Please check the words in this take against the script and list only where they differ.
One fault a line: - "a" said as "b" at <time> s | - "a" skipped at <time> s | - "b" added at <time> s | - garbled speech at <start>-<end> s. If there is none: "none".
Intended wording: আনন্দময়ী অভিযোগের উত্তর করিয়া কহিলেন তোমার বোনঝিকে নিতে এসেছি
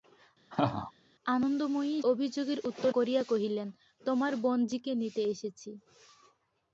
none